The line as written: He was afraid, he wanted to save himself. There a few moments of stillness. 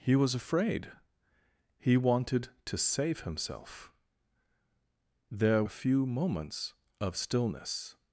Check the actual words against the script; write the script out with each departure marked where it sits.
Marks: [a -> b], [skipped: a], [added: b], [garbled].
He was afraid, he wanted to save himself. There a few moments of stillness.